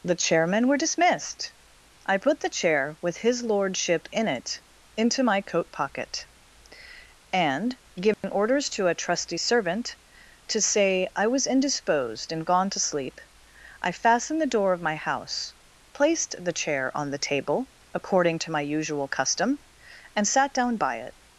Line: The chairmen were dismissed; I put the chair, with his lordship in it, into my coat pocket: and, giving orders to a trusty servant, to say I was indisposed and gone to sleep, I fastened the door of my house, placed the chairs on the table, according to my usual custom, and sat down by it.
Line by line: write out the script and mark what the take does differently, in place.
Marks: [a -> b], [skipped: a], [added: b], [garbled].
The chairmen were dismissed; I put the chair, with his lordship in it, into my coat pocket: and, giving orders to a trusty servant, to say I was indisposed and gone to sleep, I fastened the door of my house, placed the [chairs -> chair] on the table, according to my usual custom, and sat down by it.